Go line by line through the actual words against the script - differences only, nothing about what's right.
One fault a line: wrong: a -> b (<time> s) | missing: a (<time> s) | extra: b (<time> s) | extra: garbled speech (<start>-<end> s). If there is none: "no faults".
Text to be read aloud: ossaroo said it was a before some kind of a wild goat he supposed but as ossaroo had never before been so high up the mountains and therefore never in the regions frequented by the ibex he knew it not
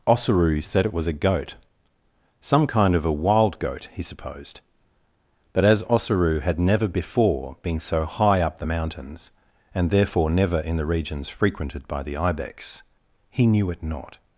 wrong: before -> goat (1.1 s)